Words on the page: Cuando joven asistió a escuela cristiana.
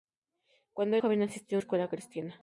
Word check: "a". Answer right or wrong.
right